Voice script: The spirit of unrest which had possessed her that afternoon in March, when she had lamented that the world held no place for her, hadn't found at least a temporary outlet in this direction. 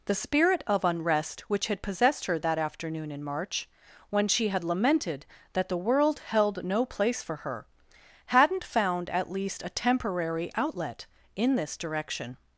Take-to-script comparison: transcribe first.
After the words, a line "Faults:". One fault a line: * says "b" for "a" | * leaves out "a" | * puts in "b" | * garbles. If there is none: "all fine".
The spirit of unrest which had possessed her that afternoon in March, when she had lamented that the world held no place for her, hadn't found at least a temporary outlet in this direction.
Faults:
all fine